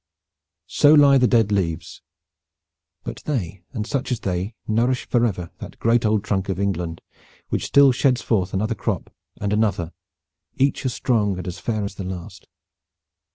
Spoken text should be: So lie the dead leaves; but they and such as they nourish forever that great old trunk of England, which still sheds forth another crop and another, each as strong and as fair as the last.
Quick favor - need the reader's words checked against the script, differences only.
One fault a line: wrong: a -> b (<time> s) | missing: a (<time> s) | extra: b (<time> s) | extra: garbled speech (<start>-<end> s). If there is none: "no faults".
no faults